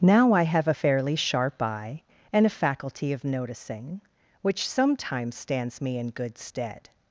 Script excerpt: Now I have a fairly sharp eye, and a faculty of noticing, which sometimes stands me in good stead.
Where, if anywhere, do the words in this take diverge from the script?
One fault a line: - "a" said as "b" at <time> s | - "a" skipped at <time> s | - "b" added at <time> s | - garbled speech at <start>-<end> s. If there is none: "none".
none